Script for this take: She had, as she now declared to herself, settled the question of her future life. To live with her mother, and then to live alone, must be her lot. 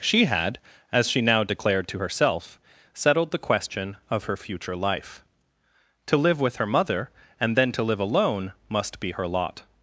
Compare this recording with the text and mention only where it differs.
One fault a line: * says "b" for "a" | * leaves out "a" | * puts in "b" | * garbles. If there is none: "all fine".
all fine